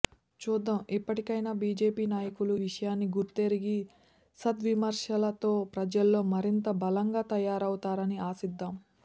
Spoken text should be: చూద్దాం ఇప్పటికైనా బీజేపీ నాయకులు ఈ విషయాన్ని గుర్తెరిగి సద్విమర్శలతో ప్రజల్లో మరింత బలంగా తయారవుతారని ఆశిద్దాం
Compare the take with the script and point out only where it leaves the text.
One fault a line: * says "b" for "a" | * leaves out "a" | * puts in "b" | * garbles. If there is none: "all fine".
* leaves out "ఈ"